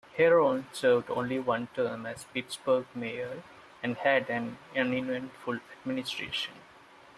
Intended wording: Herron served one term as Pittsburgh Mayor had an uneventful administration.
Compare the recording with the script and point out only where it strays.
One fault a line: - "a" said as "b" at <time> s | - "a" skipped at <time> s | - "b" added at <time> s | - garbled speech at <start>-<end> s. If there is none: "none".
- "only" added at 1.1 s
- "and" added at 3.8 s